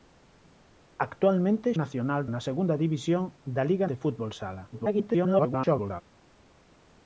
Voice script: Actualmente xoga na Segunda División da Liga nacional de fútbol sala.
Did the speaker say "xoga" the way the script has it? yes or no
no